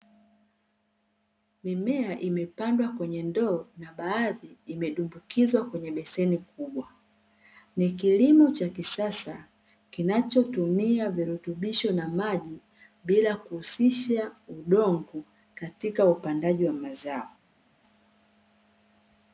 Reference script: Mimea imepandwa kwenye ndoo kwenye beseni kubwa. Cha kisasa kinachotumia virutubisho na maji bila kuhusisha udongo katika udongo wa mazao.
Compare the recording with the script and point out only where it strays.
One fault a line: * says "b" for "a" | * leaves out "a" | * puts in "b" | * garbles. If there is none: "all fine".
* puts in "na baadhi imedumbukizwa"
* puts in "Ni kilimo"
* says "upandaji" for "udongo"